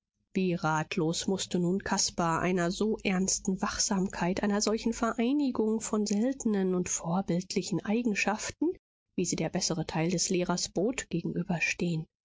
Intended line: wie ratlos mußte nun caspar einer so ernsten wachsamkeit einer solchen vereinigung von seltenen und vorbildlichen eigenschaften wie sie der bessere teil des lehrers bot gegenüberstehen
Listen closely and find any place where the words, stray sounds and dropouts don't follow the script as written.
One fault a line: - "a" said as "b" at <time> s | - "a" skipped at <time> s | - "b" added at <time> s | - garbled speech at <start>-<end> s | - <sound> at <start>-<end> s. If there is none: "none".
none